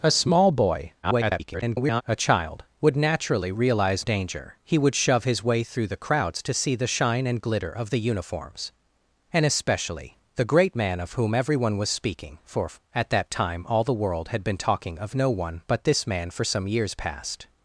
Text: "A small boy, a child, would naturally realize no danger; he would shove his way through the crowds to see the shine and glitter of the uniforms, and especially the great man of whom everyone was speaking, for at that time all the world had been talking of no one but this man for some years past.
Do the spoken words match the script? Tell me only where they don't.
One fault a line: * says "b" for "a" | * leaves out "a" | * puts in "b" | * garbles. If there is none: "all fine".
* garbles
* leaves out "no"